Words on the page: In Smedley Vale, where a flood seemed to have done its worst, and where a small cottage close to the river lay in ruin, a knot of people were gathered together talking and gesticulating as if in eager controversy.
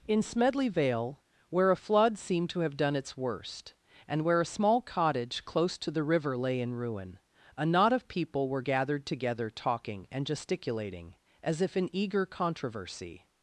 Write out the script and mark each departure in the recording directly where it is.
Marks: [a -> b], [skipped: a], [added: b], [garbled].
In Smedley Vale, where a flood seemed to have done its worst, and where a small cottage close to the river lay in ruin, a knot of people were gathered together talking and gesticulating as if in eager controversy.